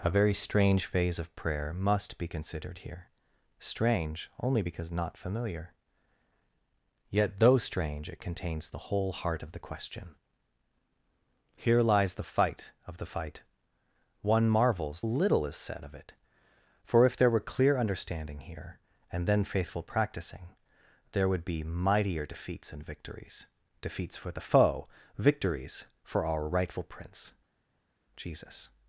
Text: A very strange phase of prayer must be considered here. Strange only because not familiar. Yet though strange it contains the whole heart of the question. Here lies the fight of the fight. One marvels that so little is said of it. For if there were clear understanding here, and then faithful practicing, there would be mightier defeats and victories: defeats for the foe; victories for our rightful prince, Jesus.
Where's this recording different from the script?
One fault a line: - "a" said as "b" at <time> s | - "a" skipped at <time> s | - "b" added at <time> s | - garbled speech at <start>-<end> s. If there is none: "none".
- "that so" skipped at 15.0 s